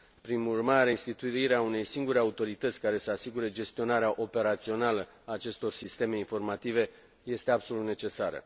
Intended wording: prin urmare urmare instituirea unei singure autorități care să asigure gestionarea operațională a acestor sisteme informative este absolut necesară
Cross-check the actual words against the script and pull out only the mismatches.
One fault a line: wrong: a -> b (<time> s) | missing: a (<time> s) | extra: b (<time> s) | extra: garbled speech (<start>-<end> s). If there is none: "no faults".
missing: urmare (0.9 s)